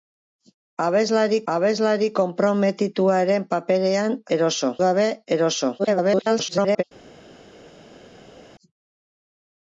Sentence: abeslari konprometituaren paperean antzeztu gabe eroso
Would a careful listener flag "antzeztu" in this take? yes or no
yes